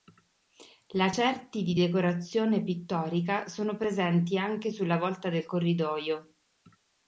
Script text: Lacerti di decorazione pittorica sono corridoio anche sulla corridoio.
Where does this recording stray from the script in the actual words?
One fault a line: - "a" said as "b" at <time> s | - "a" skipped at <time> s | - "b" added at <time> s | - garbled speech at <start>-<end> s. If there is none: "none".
- "corridoio" said as "presenti" at 3.8 s
- "volta del" added at 5.0 s